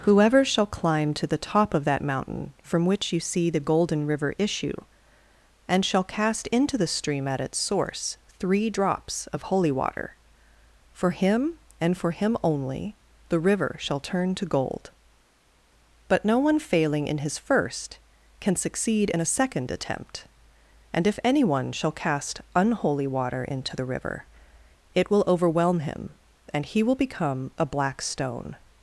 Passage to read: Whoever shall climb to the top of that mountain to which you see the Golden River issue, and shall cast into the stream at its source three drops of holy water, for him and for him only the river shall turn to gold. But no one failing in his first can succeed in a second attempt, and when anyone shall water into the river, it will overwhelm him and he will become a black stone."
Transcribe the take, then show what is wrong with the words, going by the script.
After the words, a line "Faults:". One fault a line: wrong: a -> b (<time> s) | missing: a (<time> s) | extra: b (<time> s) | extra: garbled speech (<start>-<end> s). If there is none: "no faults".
Whoever shall climb to the top of that mountain from which you see the Golden River issue, and shall cast into the stream at its source three drops of holy water, for him and for him only the river shall turn to gold. But no one failing in his first can succeed in a second attempt, and if anyone shall cast unholy water into the river, it will overwhelm him and he will become a black stone."
Faults:
wrong: to -> from (2.6 s)
wrong: when -> if (21.1 s)
extra: cast unholy (21.9 s)